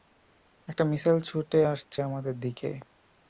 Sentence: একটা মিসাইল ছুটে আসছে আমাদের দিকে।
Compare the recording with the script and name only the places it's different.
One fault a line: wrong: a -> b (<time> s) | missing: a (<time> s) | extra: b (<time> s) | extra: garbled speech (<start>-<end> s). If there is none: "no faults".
no faults